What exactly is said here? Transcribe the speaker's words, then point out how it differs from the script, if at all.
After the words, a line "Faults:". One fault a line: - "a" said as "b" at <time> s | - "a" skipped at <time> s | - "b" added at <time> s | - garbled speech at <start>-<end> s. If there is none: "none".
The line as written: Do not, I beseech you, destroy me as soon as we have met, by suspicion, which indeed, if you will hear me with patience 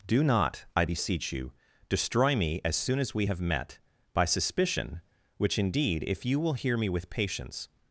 Do not, I beseech you, destroy me as soon as we have met, by suspicion, which indeed, if you will hear me with patience
Faults:
none